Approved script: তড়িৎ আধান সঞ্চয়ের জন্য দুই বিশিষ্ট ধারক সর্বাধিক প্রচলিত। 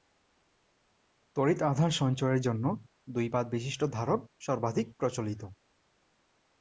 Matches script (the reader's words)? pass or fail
fail